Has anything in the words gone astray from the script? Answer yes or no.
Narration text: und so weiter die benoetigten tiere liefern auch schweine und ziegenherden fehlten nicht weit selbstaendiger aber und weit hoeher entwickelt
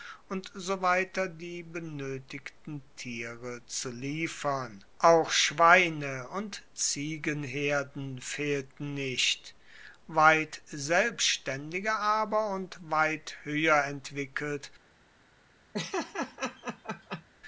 yes